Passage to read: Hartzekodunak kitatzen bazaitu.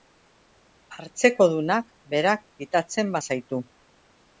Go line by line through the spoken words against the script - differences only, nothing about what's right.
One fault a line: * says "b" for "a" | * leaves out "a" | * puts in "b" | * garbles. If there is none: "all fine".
* puts in "berak"